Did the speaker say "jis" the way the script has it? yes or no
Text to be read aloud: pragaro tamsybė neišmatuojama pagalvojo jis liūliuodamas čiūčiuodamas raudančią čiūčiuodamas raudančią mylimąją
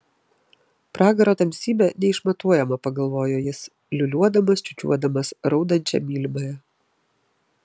yes